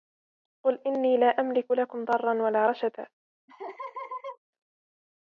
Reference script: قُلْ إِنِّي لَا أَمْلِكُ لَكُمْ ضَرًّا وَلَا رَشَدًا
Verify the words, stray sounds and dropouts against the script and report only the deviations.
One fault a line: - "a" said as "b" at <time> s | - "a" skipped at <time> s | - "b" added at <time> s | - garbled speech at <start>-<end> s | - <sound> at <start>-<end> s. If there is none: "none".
- laugh at 3.5-4.4 s